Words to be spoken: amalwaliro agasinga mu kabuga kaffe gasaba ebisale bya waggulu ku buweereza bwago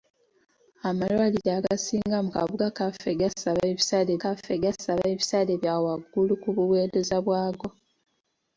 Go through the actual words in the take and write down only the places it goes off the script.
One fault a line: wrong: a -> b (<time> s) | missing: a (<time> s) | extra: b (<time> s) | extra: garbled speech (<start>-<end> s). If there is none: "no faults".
extra: kaffe gasaba ebisale (4.2 s)